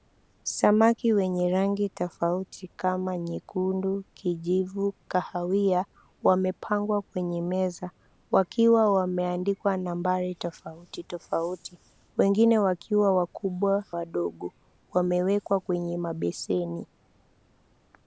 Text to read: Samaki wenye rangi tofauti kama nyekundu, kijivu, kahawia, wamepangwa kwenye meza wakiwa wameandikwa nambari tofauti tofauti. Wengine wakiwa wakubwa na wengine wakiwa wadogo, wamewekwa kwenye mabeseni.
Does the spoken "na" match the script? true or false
false